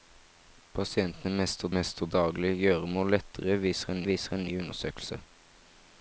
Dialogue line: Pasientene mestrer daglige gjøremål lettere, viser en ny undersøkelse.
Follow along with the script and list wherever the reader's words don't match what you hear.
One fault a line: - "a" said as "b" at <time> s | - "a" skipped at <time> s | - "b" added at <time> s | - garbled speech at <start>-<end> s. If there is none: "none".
- "mestrer" added at 1.8 s
- "viser en" added at 4.1 s